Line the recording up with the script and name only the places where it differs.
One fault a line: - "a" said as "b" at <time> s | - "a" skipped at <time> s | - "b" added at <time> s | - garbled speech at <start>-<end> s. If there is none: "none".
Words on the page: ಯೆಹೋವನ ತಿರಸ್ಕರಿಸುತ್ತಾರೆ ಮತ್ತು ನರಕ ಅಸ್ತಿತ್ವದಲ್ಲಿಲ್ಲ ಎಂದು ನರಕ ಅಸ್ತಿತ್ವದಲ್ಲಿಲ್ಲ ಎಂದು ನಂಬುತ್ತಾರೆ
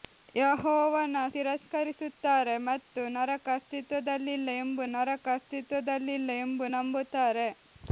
none